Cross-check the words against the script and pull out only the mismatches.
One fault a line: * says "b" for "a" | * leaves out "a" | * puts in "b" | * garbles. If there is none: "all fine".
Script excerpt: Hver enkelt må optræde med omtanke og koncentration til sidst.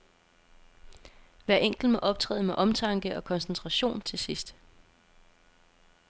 all fine